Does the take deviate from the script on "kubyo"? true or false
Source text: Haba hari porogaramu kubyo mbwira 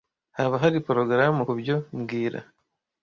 false